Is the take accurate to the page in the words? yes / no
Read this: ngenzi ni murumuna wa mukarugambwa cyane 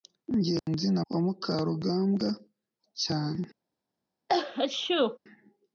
no